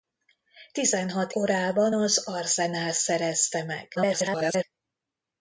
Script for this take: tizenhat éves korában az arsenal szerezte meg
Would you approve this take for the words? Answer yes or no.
no